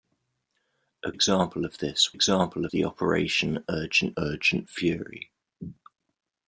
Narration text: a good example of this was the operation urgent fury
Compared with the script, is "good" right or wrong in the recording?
wrong